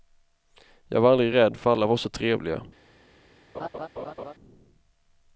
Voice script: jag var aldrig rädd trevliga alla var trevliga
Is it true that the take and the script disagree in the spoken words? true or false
true